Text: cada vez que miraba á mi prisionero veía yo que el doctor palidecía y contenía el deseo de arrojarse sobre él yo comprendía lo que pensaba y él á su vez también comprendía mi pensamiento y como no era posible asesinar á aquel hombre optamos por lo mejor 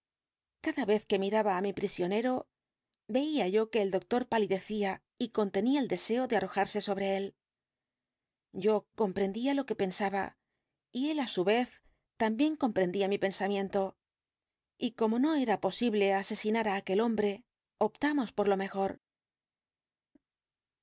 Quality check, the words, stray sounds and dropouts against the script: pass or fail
pass